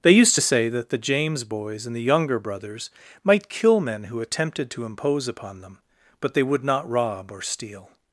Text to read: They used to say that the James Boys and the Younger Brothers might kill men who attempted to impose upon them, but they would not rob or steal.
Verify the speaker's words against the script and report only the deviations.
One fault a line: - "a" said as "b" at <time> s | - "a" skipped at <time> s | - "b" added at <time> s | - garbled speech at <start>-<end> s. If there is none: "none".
none